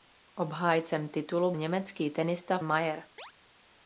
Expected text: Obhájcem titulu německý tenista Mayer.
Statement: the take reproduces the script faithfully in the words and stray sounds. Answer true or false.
false